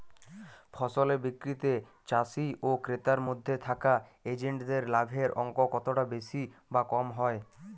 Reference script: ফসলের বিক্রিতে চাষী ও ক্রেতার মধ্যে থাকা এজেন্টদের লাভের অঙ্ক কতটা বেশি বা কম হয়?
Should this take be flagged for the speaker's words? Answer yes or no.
no